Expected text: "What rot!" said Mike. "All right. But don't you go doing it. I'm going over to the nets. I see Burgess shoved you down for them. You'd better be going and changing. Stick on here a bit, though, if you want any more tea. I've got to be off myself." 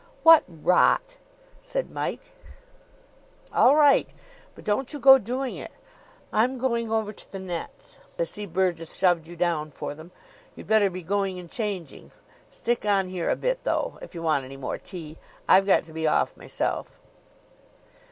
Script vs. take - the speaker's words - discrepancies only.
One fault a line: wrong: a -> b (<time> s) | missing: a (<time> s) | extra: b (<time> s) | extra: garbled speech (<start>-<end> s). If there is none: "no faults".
no faults